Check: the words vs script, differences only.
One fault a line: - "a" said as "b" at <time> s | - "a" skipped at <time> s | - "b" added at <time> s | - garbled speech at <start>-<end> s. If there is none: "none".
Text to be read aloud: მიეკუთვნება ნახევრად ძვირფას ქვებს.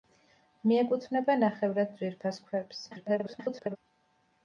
- garbled speech at 2.9-3.8 s